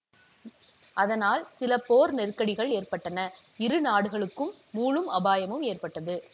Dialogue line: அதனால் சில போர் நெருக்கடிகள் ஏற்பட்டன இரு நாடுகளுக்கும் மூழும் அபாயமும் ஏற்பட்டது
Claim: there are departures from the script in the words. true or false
false